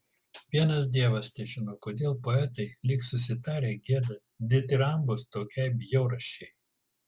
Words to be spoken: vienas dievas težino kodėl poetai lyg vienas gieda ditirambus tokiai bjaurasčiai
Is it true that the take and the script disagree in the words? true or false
true